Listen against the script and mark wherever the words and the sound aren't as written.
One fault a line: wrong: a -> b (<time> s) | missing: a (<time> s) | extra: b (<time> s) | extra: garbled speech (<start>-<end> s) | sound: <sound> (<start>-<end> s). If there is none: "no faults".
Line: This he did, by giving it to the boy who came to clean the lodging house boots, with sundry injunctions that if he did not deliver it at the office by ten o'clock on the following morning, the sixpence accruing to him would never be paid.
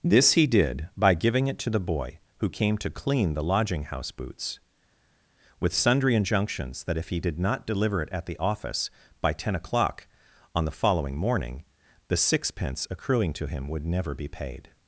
no faults